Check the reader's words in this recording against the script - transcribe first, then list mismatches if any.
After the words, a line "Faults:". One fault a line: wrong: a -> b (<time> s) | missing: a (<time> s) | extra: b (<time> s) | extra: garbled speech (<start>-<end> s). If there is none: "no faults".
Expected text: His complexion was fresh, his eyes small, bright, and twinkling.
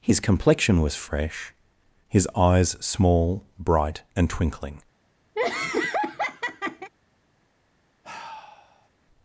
His complexion was fresh, his eyes small, bright, and twinkling.
Faults:
no faults